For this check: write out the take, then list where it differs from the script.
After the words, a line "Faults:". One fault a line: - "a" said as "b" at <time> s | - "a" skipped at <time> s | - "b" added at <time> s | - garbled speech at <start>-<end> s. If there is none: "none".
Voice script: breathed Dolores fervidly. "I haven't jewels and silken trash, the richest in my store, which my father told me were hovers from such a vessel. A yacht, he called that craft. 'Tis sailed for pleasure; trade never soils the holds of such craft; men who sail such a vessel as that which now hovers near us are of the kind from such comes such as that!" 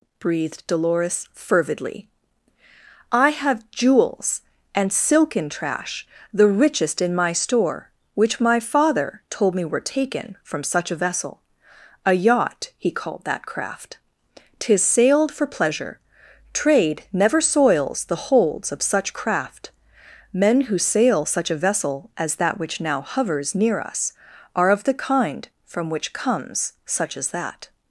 breathed Dolores fervidly. "I have jewels and silken trash, the richest in my store, which my father told me were taken from such a vessel. A yacht, he called that craft. 'Tis sailed for pleasure; trade never soils the holds of such craft; men who sail such a vessel as that which now hovers near us are of the kind from which comes such as that!"
Faults:
- "haven't" said as "have" at 3.3 s
- "hovers" said as "taken" at 9.8 s
- "such" said as "which" at 25.9 s